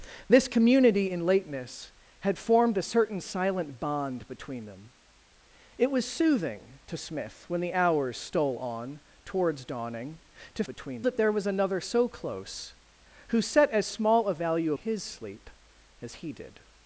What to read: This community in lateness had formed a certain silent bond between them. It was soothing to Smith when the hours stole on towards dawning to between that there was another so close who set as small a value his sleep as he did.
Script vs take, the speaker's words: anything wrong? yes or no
no